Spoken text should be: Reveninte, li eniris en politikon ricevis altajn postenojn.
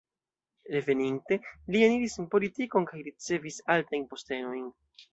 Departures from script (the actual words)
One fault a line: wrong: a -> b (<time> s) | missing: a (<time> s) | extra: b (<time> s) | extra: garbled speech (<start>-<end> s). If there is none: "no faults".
extra: kaj (2.9 s)